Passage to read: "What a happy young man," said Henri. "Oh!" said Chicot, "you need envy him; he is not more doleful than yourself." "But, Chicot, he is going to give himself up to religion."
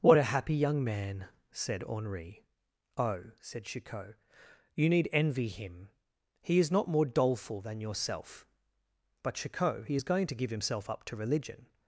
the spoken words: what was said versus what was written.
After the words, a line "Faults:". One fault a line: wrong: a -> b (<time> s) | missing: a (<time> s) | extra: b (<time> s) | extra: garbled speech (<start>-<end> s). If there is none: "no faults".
"What a happy young man," said Henri. "Oh!" said Chicot, "you need envy him; he is not more doleful than yourself." "But, Chicot, he is going to give himself up to religion."
Faults:
no faults